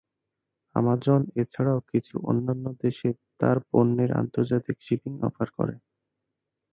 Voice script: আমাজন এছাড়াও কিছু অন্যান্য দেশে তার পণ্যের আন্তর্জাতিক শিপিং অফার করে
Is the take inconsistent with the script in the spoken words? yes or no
no